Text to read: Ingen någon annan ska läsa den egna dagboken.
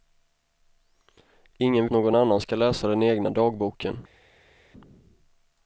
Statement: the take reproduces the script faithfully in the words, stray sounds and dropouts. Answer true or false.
true